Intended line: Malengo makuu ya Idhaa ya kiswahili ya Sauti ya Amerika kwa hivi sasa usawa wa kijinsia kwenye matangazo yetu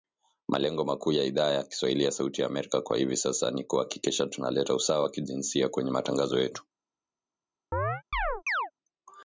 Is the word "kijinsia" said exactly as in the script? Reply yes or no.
yes